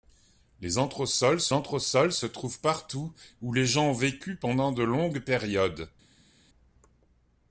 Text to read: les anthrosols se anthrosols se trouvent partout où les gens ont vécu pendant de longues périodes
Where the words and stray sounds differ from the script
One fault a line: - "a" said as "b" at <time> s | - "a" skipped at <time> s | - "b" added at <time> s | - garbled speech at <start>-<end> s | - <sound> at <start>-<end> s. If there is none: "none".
none